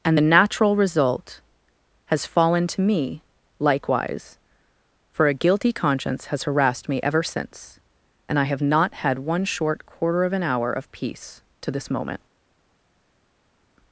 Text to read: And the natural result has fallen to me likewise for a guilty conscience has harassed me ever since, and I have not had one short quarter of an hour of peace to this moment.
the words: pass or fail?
pass